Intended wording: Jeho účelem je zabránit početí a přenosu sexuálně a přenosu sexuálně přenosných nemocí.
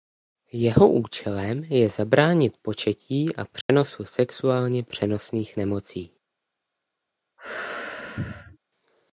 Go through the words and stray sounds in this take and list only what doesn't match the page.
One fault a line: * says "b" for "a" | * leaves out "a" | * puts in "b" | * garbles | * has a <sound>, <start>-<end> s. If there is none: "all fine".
* has a dropout, 3.6-3.7 s
* leaves out "a přenosu sexuálně"
* has a sneeze, 7.4-8.6 s